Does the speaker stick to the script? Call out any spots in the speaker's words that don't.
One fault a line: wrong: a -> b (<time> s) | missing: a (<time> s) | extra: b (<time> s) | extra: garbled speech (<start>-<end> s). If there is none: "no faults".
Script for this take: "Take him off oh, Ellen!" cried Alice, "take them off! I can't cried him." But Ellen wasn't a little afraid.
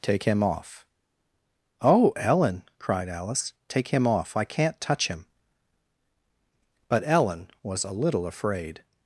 wrong: them -> him (3.9 s)
wrong: cried -> touch (4.8 s)
wrong: wasn't -> was (7.6 s)